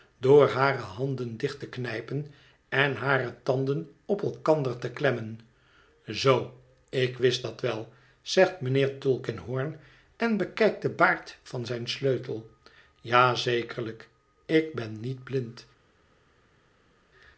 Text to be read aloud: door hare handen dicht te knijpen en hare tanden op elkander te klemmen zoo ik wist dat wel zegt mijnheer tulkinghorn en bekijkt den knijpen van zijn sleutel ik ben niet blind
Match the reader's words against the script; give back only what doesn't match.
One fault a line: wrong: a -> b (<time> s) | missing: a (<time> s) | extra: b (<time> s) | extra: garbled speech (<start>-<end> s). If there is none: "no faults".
wrong: knijpen -> baard (10.9 s)
extra: ja zekerlijk (13.0 s)